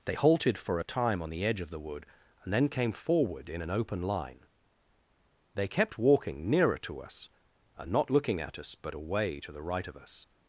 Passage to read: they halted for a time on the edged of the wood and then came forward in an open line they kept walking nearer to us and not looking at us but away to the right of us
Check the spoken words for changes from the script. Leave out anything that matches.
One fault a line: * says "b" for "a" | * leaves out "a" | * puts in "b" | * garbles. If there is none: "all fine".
* says "edge" for "edged"